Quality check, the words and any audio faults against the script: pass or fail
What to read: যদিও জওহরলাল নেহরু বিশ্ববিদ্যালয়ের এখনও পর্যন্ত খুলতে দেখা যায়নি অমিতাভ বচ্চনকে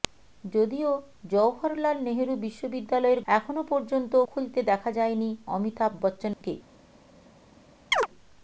fail